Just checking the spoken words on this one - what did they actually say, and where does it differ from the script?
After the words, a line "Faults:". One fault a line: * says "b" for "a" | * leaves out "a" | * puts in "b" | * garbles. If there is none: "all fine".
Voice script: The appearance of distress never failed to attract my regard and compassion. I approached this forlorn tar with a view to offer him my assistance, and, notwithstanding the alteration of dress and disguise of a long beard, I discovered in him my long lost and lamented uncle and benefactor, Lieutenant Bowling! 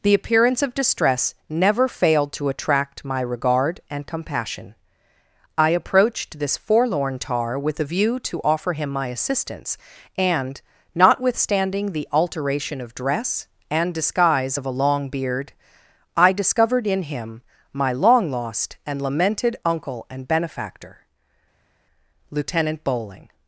The appearance of distress never failed to attract my regard and compassion. I approached this forlorn tar with a view to offer him my assistance, and, notwithstanding the alteration of dress and disguise of a long beard, I discovered in him my long lost and lamented uncle and benefactor, Lieutenant Bowling!
Faults:
all fine